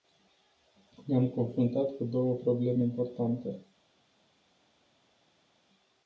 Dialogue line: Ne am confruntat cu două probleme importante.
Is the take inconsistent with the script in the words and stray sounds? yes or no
no